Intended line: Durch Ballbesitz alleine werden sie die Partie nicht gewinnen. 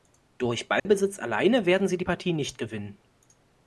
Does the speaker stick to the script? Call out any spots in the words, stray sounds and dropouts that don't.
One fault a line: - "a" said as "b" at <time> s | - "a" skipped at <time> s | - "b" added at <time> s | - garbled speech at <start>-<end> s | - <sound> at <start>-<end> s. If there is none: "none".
- dropout at 0.8-0.9 s